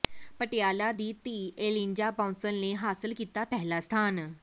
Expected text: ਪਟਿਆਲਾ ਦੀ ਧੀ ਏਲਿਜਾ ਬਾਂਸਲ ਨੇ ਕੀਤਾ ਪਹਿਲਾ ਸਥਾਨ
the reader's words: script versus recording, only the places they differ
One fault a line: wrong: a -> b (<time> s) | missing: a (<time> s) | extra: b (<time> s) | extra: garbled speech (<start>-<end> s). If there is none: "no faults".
extra: ਹਾਸਲ (2.7 s)